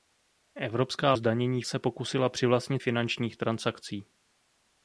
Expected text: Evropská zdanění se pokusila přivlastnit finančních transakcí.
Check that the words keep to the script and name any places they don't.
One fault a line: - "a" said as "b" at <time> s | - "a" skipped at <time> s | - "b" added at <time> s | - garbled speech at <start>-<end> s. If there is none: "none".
none